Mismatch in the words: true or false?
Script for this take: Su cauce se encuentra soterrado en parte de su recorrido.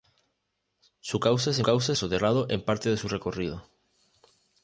true